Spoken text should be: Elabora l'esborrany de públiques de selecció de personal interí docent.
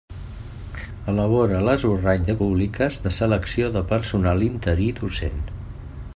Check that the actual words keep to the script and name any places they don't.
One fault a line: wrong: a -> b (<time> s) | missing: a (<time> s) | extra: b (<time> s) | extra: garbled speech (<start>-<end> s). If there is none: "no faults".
no faults